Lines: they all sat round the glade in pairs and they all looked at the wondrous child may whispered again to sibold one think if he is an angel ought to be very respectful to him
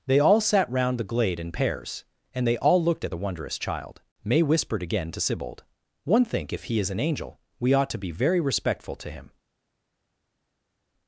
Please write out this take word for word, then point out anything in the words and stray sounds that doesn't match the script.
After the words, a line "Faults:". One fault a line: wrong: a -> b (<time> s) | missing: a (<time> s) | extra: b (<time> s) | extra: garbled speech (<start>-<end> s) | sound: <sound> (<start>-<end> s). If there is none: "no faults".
they all sat round the glade in pairs and they all looked at the wondrous child may whispered again to sibold one think if he is an angel we ought to be very respectful to him
Faults:
extra: we (7.6 s)